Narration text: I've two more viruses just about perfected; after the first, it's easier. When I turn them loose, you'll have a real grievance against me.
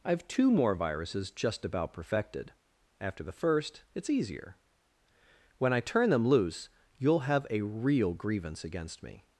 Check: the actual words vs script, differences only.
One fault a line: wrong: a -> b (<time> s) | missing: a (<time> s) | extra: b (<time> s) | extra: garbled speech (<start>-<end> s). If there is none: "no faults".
no faults